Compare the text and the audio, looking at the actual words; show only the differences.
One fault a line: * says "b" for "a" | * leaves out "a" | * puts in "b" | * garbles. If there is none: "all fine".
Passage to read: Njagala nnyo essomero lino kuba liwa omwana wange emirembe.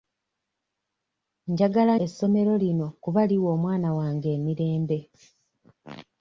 * leaves out "nnyo"